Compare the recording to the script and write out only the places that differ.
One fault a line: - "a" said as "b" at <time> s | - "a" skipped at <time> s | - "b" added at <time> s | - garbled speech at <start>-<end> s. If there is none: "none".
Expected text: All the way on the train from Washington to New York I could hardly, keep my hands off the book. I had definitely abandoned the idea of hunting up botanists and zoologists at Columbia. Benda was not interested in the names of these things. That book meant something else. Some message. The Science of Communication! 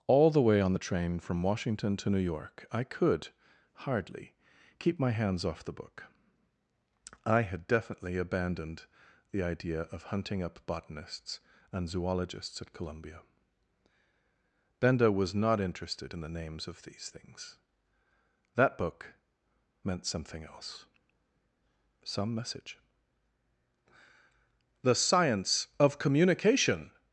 none